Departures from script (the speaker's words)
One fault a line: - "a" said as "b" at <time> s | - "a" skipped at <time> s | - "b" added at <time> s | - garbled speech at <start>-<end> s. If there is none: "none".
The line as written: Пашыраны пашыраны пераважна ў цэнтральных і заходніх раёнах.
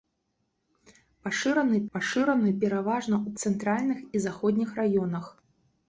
none